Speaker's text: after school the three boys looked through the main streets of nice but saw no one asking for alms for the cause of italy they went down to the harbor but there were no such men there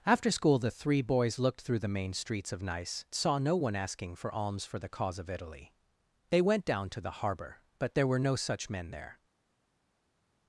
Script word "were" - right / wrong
right